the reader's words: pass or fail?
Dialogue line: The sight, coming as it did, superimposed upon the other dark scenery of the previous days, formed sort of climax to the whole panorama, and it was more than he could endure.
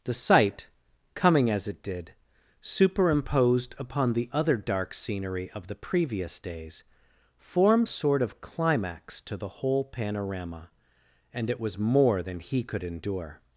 pass